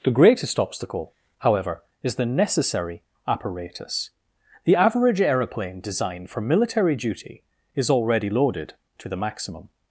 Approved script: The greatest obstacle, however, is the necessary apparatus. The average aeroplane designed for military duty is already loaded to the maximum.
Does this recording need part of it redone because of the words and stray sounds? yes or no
no